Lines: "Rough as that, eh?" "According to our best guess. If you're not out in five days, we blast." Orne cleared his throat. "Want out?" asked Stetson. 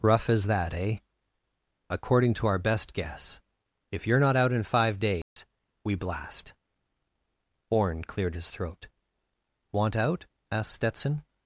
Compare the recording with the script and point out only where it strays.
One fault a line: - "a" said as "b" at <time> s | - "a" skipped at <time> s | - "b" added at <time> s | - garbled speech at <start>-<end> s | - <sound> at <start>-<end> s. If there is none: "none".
- dropout at 5.2-5.4 s